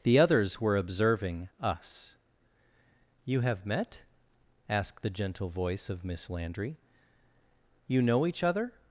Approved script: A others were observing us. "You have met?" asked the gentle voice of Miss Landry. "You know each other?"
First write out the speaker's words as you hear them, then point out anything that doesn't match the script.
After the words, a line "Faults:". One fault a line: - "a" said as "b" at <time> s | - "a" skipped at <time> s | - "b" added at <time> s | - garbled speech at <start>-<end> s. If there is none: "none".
The others were observing us. "You have met?" asked the gentle voice of Miss Landry. "You know each other?"
Faults:
- "A" said as "The" at 0.0 s